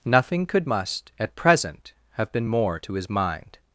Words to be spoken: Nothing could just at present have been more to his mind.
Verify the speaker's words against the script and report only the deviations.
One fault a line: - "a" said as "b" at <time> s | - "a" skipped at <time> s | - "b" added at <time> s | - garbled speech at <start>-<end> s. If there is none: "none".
- "just" said as "must" at 0.7 s